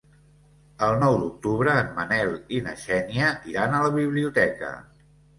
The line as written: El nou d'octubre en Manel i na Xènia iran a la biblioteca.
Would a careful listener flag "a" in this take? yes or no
no